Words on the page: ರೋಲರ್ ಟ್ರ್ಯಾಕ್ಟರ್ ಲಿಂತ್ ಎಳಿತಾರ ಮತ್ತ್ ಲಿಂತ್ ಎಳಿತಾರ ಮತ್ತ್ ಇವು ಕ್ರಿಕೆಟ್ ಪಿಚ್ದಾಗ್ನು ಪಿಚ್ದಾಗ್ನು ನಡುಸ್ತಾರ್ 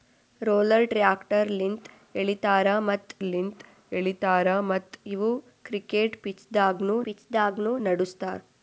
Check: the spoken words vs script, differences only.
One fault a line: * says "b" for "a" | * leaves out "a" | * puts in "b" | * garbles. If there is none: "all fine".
all fine